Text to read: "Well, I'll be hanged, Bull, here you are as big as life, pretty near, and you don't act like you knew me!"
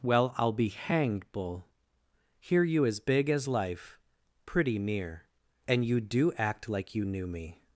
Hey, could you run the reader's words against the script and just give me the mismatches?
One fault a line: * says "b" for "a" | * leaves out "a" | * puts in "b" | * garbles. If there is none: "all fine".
* leaves out "are"
* says "do" for "don't"